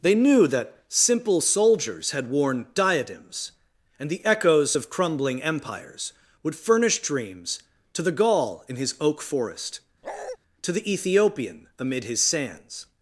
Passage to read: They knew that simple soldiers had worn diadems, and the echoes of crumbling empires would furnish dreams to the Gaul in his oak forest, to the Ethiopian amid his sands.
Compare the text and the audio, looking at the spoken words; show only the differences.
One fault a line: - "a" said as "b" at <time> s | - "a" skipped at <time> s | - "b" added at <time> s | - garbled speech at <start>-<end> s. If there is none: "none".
none